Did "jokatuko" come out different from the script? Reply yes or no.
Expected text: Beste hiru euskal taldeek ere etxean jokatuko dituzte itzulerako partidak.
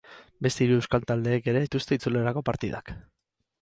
yes